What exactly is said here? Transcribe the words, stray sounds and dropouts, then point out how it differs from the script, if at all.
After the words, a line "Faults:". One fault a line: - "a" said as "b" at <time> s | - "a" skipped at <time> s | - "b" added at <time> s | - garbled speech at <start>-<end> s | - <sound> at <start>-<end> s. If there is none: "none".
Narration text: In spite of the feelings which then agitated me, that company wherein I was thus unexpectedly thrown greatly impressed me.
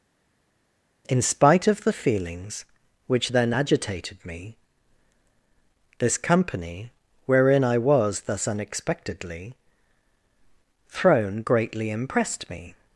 In spite of the feelings which then agitated me, this company wherein I was thus unexpectedly thrown greatly impressed me.
Faults:
- "that" said as "this" at 6.0 s